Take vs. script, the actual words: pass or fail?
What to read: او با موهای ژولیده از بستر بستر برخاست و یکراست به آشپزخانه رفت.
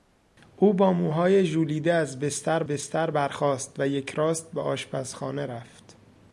pass